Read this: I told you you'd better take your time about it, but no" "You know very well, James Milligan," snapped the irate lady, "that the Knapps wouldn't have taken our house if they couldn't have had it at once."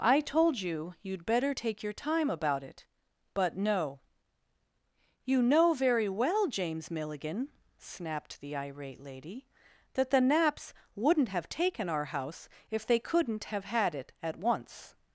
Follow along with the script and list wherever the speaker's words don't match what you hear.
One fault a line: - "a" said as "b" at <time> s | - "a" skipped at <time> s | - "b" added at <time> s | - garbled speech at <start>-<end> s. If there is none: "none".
none